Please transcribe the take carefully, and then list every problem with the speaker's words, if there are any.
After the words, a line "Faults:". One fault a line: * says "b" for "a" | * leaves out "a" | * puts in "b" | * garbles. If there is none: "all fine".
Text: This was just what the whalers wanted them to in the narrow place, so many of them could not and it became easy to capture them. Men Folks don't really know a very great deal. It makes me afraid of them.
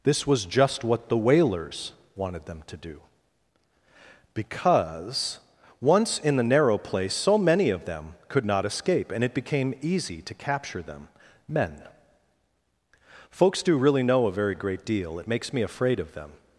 This was just what the whalers wanted them to do. Because, once in the narrow place, so many of them could not escape, and it became easy to capture them. Men Folks do really know a very great deal. It makes me afraid of them.
Faults:
* puts in "do Because once"
* puts in "escape"
* says "do" for "don't"